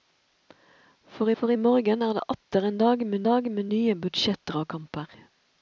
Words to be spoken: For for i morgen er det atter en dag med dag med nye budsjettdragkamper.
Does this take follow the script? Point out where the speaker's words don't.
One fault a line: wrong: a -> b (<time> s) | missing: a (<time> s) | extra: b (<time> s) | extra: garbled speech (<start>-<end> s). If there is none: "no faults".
no faults